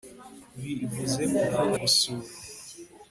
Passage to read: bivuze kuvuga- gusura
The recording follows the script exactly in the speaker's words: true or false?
true